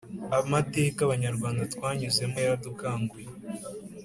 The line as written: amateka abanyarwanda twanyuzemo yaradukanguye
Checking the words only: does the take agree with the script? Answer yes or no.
yes